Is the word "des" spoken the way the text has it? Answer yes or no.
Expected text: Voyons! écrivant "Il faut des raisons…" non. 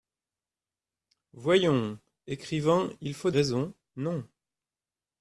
no